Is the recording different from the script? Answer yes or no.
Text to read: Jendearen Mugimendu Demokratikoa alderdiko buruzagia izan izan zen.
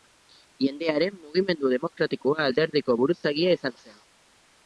yes